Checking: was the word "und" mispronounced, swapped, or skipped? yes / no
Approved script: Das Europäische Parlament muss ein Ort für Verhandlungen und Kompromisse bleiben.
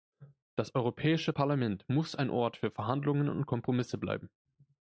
no